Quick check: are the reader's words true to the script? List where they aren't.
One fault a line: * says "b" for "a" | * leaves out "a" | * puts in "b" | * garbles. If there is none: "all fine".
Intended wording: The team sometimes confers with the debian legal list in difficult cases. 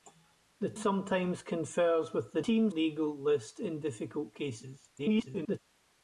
* leaves out "team"
* says "team" for "debian"
* garbles